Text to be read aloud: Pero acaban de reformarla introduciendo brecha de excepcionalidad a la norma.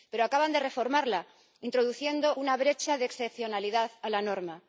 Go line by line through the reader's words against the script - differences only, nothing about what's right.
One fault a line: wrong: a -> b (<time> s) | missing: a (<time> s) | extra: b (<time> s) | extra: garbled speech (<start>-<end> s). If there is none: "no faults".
extra: una (2.3 s)